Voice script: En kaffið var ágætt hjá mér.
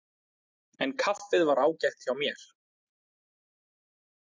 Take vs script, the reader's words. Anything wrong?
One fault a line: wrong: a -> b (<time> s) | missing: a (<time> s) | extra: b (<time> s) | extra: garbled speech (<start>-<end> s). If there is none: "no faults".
no faults